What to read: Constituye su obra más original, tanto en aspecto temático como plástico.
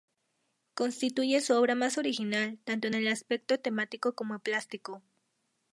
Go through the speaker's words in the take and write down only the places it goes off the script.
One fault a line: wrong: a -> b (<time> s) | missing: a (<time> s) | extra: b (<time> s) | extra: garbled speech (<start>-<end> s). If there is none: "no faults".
extra: el (2.9 s)